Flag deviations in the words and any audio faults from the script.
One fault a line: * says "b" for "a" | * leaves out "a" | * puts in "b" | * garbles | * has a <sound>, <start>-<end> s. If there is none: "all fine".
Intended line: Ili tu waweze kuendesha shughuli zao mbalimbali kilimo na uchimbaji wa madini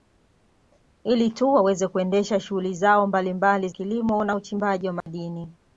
* has a dropout, 5.0-5.1 s